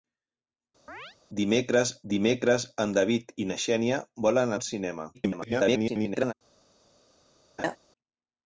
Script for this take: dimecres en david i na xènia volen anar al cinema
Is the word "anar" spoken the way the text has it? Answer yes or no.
no